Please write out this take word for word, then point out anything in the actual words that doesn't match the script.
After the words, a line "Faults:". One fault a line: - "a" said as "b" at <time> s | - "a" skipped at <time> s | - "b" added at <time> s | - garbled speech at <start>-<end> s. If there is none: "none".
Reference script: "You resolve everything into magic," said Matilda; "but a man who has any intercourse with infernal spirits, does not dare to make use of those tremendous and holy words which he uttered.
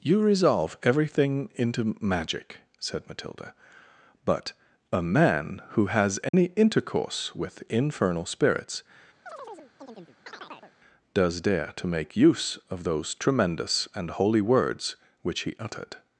"You resolve everything into magic," said Matilda; "but a man who has any intercourse with infernal spirits, does dare to make use of those tremendous and holy words which he uttered.
Faults:
- "not" skipped at 11.4 s